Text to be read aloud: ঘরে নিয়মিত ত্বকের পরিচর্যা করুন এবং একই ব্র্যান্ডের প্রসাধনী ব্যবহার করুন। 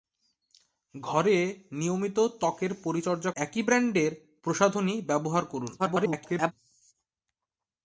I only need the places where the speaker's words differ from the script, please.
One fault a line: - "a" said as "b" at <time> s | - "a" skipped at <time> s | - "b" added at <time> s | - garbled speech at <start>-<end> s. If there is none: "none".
- "করুন এবং" skipped at 3.3 s
- garbled speech at 5.8-6.5 s